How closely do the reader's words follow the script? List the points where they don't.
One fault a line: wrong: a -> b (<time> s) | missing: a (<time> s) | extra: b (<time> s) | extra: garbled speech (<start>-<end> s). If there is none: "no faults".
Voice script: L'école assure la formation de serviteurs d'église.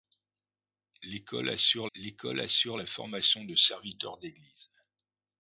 extra: l'école assure (2.0 s)